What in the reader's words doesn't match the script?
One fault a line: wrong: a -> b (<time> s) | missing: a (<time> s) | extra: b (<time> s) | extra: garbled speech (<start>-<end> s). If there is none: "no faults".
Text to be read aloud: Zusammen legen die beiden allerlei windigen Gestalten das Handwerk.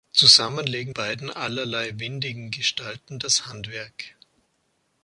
missing: die (0.9 s)